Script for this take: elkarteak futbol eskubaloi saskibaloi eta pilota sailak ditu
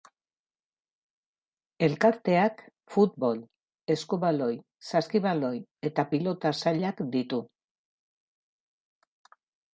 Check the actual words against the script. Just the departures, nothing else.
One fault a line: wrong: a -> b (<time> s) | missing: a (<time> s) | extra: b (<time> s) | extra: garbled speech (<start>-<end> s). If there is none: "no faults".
no faults